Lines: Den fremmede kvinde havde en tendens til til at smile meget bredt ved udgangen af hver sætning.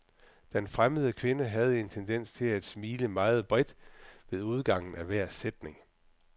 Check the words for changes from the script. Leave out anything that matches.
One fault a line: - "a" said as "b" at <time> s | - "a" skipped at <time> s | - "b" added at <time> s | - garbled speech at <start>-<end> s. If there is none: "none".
- "til" skipped at 2.5 s